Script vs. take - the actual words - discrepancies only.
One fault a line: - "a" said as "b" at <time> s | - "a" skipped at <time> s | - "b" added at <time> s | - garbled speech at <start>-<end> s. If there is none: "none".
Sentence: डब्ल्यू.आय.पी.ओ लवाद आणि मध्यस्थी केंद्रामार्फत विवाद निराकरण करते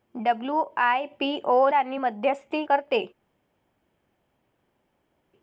- "लवाद" skipped at 1.7 s
- "केंद्रामार्फत विवाद निराकरण" skipped at 2.6 s